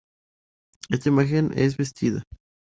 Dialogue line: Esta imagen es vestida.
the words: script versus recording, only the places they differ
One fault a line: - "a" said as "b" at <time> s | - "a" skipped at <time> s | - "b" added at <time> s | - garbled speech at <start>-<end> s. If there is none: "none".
none